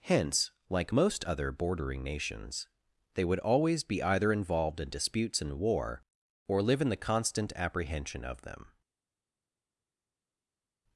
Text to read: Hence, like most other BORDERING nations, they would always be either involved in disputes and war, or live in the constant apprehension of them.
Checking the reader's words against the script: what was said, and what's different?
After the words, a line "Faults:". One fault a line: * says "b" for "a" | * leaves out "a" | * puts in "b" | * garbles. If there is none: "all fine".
Hence, like most other BORDERING nations, they would always be either involved in disputes and war, or live in the constant apprehension of them.
Faults:
all fine